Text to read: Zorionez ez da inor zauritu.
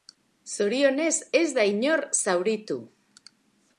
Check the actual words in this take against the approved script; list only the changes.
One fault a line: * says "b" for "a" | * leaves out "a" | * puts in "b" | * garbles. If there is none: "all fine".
all fine